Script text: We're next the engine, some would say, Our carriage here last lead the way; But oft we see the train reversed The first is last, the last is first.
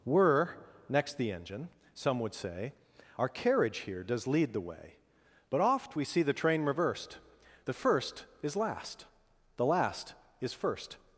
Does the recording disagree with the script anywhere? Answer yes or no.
yes